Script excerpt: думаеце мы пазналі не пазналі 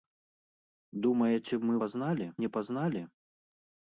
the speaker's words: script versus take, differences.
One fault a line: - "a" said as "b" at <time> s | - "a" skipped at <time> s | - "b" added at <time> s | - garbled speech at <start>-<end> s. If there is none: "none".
none